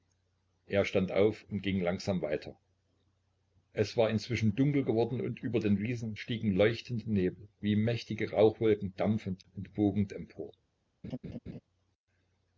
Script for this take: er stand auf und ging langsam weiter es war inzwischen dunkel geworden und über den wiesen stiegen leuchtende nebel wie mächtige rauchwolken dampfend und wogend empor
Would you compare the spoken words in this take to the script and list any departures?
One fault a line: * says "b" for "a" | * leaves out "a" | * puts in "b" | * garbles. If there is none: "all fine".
all fine